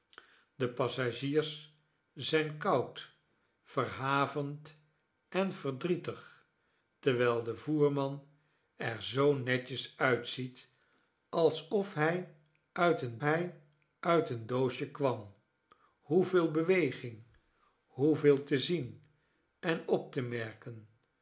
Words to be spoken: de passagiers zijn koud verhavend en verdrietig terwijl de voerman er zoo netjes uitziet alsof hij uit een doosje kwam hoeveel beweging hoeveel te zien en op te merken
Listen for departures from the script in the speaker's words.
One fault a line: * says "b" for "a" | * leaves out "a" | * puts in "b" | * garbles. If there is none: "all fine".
* puts in "hij uit een"